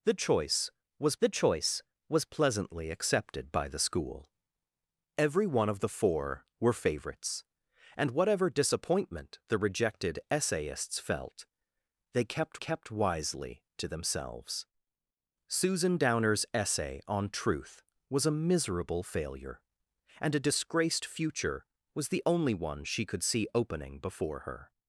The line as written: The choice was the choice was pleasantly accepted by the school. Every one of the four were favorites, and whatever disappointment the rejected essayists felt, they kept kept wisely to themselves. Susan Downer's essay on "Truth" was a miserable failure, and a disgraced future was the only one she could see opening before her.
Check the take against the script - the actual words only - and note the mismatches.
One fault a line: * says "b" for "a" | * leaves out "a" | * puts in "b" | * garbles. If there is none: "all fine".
all fine